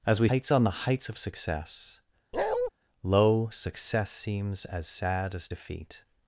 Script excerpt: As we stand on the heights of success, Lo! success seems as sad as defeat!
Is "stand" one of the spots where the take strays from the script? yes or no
yes